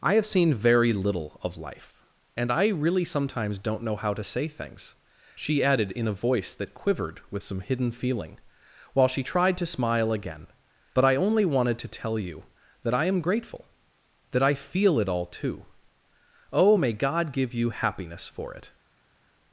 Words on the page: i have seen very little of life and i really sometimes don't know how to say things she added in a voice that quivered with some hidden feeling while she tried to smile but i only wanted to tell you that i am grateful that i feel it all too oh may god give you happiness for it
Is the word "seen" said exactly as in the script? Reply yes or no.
yes